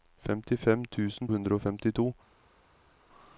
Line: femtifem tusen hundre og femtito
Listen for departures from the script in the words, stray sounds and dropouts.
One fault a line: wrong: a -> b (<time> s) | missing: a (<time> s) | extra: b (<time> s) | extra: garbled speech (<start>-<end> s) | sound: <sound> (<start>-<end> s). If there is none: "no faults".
no faults